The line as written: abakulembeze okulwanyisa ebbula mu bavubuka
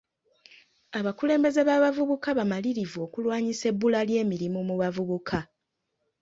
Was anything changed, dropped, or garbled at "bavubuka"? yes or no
no